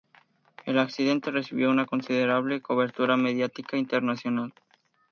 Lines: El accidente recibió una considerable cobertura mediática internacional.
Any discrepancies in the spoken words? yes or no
no